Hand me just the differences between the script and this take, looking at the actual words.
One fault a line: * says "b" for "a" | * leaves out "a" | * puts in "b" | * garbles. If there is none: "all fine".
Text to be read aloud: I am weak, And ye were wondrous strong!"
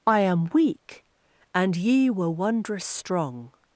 all fine